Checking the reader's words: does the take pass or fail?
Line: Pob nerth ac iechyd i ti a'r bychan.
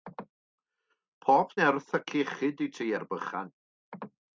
pass